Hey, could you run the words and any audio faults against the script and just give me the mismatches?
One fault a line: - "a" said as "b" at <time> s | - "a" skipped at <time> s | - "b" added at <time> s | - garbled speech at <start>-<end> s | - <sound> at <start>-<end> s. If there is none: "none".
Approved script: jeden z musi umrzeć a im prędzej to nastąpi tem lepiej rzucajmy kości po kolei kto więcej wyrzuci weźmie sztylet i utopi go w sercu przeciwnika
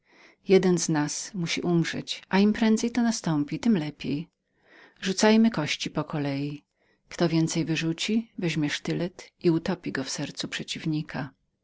- "nas" added at 0.9 s